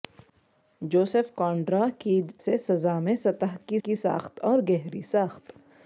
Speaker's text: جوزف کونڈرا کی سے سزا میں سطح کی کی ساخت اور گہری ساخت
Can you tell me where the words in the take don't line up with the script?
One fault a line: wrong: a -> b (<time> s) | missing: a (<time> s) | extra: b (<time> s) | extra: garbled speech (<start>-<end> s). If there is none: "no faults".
no faults